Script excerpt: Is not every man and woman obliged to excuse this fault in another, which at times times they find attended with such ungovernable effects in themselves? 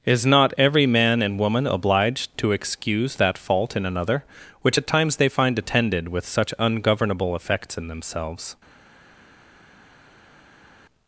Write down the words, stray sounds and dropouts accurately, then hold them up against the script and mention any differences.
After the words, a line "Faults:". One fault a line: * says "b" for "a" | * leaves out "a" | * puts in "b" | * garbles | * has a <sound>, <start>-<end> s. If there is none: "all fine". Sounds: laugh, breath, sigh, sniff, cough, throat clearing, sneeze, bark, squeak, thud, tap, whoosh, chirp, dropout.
Is not every man and woman obliged to excuse that fault in another, which at times they find attended with such ungovernable effects in themselves?
Faults:
* says "that" for "this"
* leaves out "times"